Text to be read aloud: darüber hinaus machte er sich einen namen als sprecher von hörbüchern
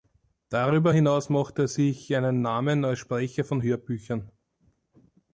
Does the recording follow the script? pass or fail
pass